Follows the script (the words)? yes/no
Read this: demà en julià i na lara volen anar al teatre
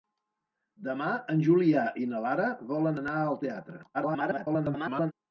no